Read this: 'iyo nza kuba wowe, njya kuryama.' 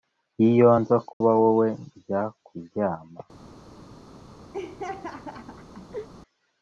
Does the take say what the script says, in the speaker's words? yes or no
yes